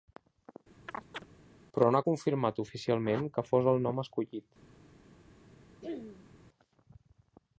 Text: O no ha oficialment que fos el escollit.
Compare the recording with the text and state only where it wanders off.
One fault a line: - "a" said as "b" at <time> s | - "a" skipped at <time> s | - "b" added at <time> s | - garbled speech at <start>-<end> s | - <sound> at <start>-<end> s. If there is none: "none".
- chirp at 0.9-1.3 s
- "O" said as "Però" at 1.8 s
- "confirmat" added at 2.1 s
- "nom" added at 3.9 s
- throat clearing at 5.8-6.3 s